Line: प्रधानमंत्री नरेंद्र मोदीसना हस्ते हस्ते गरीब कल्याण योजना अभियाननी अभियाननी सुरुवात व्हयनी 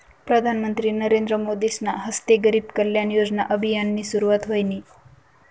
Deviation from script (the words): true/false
true